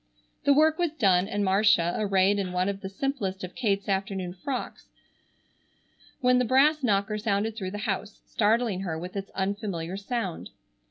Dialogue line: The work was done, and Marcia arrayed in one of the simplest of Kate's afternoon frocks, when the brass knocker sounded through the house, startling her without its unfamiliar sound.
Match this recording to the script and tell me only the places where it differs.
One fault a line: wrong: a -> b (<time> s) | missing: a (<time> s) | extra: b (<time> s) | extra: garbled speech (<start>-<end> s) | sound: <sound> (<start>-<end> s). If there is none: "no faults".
wrong: without -> with (9.0 s)